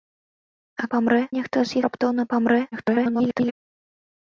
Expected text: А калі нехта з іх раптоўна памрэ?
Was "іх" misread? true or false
true